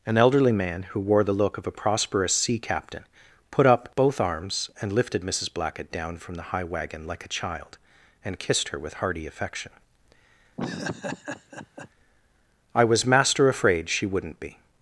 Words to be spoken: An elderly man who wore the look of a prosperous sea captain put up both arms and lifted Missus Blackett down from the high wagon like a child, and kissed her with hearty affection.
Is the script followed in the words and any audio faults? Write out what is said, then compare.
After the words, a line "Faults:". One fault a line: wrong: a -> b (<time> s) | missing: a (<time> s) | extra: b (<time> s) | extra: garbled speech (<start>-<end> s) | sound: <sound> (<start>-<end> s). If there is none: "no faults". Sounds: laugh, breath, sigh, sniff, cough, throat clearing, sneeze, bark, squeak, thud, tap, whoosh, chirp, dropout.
An elderly man who wore the look of a prosperous sea captain put up both arms and lifted Missus Blackett down from the high wagon like a child, and kissed her with hearty affection. "I was master afraid she wouldn't be
Faults:
sound: laugh (10.6-11.9 s)
extra: I was master afraid she wouldn't be (12.7 s)